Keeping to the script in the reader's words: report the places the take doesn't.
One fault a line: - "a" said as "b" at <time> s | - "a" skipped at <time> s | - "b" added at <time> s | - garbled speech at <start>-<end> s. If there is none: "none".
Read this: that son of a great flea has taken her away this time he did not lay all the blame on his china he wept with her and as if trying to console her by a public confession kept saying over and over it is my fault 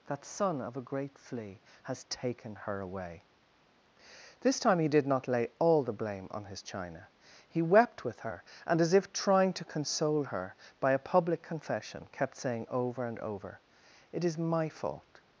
none